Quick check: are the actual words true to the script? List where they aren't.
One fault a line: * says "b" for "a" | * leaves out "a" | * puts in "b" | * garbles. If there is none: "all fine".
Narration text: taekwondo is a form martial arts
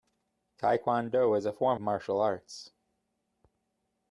all fine